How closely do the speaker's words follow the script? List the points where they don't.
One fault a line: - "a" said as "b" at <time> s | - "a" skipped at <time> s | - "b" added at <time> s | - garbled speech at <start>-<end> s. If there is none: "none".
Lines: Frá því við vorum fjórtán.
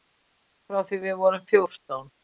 none